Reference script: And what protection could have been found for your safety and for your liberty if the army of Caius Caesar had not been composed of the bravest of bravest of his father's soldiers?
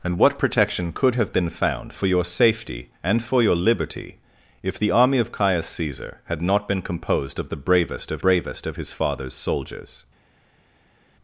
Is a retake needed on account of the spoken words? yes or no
no